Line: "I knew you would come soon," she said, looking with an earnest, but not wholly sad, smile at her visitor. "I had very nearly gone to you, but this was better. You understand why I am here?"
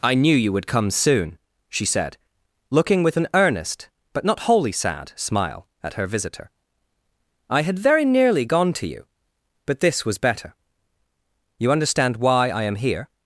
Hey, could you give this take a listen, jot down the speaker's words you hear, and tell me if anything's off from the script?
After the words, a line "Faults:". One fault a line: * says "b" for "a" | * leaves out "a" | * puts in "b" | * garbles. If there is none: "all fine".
"I knew you would come soon," she said, looking with an earnest, but not wholly sad, smile at her visitor. "I had very nearly gone to you, but this was better. You understand why I am here?"
Faults:
all fine